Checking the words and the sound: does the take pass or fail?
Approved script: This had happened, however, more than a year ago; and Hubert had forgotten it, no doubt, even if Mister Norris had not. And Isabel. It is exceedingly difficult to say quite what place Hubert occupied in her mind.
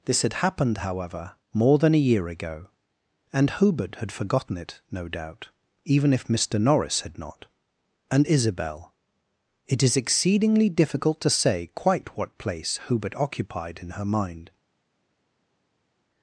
pass